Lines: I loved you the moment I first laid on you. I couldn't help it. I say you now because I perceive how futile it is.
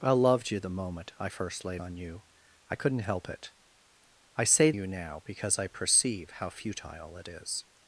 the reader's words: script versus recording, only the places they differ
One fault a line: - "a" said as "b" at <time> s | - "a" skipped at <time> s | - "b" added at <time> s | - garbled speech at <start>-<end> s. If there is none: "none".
none